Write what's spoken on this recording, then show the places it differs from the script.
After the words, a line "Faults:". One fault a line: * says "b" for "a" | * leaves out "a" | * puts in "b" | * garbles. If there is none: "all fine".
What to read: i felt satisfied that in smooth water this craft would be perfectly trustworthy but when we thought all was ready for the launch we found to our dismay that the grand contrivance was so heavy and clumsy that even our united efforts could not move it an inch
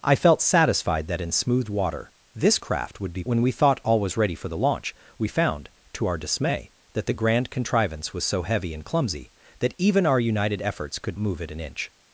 i felt satisfied that in smooth water this craft would be when we thought all was ready for the launch we found to our dismay that the grand contrivance was so heavy and clumsy that even our united efforts could move it an inch
Faults:
* leaves out "perfectly trustworthy but"
* leaves out "not"